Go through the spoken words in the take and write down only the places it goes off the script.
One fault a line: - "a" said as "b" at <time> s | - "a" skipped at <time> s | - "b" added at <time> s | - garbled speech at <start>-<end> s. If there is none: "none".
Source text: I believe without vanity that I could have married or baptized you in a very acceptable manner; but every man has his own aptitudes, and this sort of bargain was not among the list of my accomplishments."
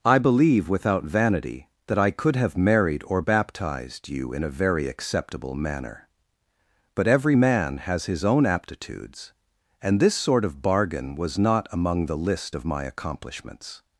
none